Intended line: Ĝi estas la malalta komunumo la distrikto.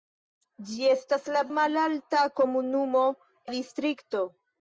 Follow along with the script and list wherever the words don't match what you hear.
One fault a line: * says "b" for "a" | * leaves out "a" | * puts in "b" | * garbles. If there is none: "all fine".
all fine